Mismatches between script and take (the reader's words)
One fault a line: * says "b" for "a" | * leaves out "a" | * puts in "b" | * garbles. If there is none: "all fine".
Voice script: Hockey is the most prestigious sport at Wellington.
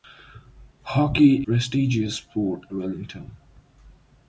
* leaves out "is the most"
* leaves out "at"